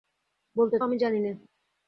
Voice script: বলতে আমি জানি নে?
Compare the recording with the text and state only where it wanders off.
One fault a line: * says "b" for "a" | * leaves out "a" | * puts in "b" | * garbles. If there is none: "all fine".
all fine